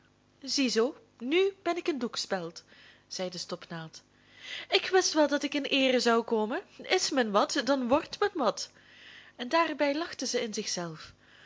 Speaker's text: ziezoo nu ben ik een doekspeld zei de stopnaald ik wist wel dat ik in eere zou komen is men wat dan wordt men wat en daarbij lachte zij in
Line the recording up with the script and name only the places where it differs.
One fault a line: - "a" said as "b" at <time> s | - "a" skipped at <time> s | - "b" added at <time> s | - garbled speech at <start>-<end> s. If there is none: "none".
none